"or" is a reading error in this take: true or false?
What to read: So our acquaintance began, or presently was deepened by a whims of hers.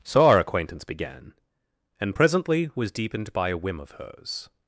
true